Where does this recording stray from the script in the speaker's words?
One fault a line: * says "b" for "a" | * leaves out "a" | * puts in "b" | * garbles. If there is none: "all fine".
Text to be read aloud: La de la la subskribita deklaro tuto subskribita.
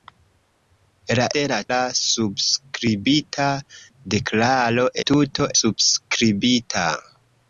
all fine